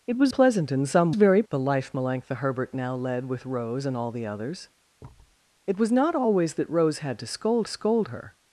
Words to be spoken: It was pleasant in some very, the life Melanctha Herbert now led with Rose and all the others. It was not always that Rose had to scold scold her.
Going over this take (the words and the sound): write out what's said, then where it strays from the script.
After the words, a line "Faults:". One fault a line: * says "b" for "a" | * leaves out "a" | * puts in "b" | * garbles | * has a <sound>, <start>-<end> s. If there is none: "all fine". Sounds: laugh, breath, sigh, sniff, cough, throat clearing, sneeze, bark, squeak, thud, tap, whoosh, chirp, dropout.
It was pleasant in some very, the life Melanctha Herbert now led with Rose and all the others. It was not always that Rose had to scold scold her.
Faults:
* has a thud, 5.0-5.4 s